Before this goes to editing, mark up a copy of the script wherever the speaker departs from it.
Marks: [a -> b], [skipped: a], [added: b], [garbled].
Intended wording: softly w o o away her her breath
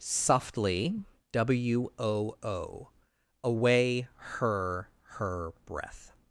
softly w o o away her her breath